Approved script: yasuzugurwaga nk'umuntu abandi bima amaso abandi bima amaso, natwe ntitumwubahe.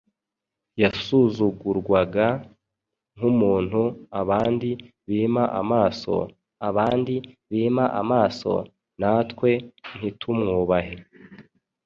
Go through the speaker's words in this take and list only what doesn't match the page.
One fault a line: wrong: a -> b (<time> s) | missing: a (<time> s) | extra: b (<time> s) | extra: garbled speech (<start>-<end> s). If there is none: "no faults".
no faults